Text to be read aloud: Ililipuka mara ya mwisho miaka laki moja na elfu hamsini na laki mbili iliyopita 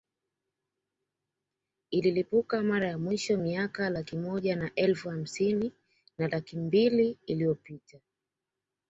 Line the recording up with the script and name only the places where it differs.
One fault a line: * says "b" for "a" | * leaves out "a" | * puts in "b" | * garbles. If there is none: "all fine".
all fine